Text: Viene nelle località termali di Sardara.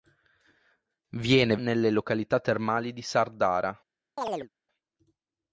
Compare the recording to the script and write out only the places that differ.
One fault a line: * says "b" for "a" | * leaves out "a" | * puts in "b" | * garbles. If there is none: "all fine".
all fine